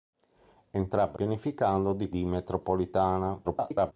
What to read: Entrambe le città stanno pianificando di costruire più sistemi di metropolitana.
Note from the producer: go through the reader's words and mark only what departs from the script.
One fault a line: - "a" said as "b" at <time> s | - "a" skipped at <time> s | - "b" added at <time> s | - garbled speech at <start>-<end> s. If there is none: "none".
- "le città stanno" skipped at 1.2 s
- "costruire più sistemi" skipped at 2.1 s
- garbled speech at 3.4-3.9 s